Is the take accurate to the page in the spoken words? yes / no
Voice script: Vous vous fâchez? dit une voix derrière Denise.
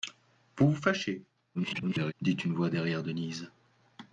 no